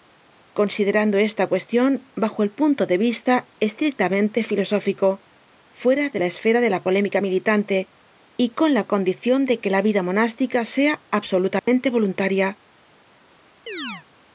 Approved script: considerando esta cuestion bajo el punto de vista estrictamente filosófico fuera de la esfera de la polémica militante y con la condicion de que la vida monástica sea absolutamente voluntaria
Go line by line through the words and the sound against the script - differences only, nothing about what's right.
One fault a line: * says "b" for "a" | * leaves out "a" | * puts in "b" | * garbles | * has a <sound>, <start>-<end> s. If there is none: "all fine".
* has a dropout, 11.6-11.7 s
* has a chirp, 13.7-14.1 s